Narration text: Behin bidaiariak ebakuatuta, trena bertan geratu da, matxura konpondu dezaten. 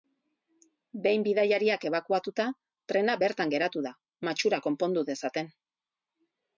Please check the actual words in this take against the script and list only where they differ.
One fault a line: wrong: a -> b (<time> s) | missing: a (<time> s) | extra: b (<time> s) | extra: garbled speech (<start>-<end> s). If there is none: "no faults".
no faults